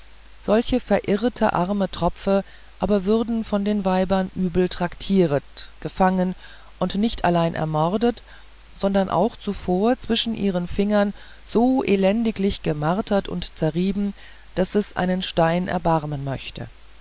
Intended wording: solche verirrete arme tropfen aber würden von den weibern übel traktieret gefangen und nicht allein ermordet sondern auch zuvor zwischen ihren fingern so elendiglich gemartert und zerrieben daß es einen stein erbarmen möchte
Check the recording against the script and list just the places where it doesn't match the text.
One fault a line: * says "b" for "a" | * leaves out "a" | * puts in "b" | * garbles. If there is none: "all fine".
all fine